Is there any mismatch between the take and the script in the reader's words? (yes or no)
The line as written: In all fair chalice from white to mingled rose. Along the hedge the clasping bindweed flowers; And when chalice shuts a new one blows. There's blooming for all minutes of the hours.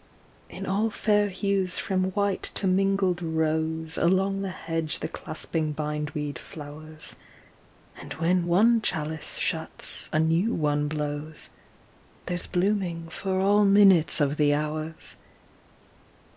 yes